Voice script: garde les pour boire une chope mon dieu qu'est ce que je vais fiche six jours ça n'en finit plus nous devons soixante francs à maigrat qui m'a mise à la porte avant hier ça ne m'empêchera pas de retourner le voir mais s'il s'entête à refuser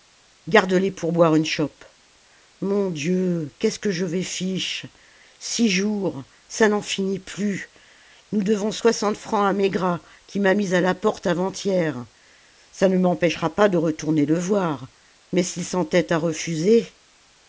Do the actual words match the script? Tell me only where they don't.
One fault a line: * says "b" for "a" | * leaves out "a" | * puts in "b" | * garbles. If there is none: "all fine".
all fine